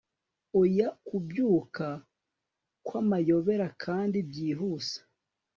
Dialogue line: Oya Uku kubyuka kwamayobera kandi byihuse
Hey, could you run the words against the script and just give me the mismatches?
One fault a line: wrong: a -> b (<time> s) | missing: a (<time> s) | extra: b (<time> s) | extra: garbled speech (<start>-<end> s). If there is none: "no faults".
missing: Uku (0.9 s)